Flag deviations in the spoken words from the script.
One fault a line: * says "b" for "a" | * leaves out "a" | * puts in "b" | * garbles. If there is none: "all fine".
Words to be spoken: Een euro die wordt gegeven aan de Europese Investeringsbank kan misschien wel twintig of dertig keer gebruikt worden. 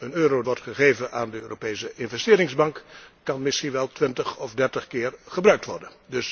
* leaves out "die"